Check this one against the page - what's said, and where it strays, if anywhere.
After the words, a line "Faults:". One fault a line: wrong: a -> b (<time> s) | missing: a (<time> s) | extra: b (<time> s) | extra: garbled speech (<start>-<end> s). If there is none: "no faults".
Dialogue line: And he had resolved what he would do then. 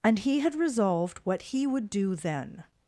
And he had resolved what he would do then.
Faults:
no faults